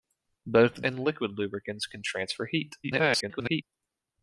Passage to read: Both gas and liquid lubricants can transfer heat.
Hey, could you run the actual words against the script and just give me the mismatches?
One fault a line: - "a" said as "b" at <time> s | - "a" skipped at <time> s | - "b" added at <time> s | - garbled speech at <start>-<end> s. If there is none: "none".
- "gas" skipped at 0.8 s
- garbled speech at 2.8-3.6 s